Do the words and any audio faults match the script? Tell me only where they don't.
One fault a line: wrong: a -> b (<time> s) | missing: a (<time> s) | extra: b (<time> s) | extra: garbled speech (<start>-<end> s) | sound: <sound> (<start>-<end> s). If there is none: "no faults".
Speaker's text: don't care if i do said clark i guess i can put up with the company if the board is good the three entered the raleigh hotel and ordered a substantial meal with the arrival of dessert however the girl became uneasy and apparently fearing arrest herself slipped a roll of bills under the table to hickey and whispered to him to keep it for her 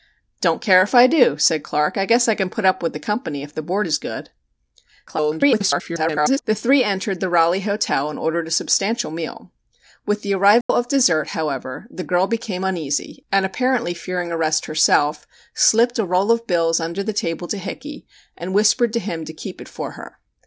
extra: garbled speech (5.1-6.4 s)
sound: dropout (10.6-10.7 s)